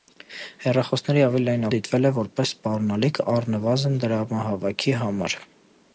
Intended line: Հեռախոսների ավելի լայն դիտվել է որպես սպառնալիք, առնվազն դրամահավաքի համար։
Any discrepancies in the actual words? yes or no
no